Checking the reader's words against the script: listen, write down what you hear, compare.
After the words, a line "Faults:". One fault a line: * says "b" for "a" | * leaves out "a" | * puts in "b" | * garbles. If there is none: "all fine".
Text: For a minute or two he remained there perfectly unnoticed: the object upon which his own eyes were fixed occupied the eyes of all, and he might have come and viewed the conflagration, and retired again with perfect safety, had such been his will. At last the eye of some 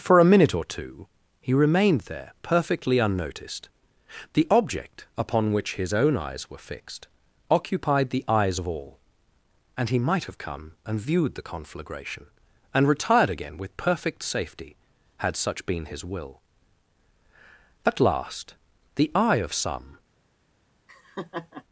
For a minute or two he remained there perfectly unnoticed: the object upon which his own eyes were fixed occupied the eyes of all, and he might have come and viewed the conflagration, and retired again with perfect safety, had such been his will. At last the eye of some
Faults:
all fine